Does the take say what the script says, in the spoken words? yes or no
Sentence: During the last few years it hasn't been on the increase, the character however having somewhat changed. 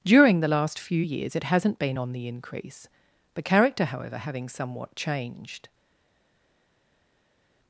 yes